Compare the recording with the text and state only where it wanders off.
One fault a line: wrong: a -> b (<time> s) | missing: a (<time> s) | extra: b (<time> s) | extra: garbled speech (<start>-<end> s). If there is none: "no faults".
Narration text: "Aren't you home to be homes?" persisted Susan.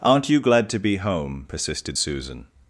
wrong: home -> glad (0.4 s)
wrong: homes -> home (1.0 s)